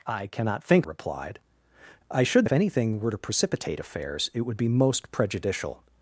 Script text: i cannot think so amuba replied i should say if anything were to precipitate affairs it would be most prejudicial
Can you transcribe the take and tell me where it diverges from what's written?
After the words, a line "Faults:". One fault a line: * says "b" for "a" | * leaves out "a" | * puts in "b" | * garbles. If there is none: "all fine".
i cannot think replied i should if anything were to precipitate affairs it would be most prejudicial
Faults:
* leaves out "so amuba"
* leaves out "say"